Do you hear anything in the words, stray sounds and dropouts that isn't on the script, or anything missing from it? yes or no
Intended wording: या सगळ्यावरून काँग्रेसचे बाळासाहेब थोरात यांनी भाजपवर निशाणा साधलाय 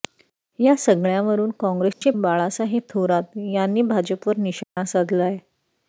yes